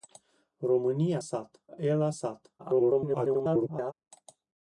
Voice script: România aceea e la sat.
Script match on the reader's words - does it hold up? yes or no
no